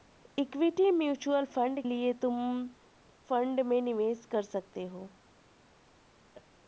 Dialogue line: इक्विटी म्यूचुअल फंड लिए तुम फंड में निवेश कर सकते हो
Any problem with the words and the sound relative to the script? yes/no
yes